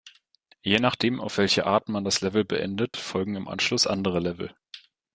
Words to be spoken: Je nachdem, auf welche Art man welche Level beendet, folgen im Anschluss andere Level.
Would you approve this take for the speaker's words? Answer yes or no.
no